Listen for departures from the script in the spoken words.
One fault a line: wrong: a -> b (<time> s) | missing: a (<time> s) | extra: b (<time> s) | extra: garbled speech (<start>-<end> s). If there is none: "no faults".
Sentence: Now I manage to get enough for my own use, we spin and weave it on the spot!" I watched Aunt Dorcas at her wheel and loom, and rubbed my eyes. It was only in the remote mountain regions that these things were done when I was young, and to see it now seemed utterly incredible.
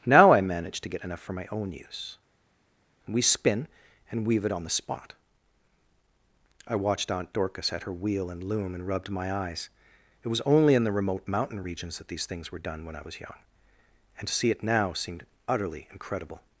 no faults